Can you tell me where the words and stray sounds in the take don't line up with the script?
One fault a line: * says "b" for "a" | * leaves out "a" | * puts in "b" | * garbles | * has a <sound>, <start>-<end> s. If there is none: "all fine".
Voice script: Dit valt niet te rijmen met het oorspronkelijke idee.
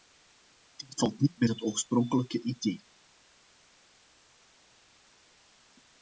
* leaves out "te rijmen"